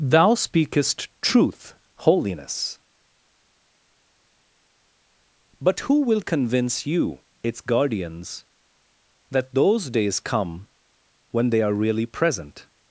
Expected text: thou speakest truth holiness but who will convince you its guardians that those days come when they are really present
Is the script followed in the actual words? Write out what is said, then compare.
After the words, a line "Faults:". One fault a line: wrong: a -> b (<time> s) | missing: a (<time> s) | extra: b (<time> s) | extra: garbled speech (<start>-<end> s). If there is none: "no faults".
thou speakest truth holiness but who will convince you its guardians that those days come when they are really present
Faults:
no faults